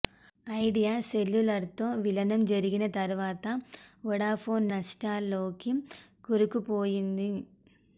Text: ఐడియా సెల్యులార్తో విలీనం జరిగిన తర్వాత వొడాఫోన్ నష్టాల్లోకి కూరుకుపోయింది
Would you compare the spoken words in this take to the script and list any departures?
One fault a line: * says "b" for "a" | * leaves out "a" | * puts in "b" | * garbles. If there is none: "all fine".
all fine